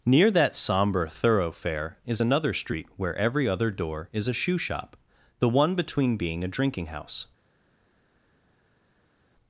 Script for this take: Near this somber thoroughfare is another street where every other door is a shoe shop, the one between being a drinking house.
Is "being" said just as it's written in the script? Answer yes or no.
yes